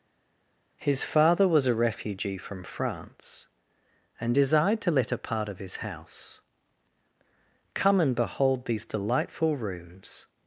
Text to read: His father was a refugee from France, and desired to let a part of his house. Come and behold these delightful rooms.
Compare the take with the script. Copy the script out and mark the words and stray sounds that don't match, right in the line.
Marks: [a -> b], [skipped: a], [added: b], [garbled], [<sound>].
His father was a refugee from France, and desired to let a part of his house. Come and behold these delightful rooms.